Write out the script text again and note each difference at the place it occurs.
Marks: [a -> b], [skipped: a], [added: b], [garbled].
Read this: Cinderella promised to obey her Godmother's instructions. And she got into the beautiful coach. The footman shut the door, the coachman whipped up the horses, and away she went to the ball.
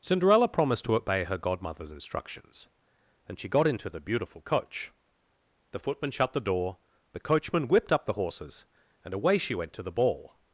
Cinderella promised to obey her Godmother's instructions. And she got into the beautiful coach. The footman shut the door, the coachman whipped up the horses, and away she went to the ball.